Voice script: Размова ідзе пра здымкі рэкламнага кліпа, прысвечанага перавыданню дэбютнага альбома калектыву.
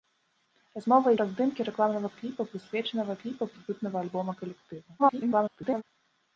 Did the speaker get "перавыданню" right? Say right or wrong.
wrong